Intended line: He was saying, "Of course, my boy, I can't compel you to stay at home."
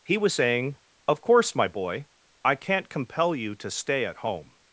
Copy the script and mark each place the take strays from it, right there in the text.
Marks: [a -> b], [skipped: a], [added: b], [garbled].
He was saying, "Of course, my boy, I can't compel you to stay at home."